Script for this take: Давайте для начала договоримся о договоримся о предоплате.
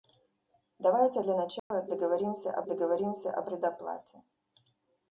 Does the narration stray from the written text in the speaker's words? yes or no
no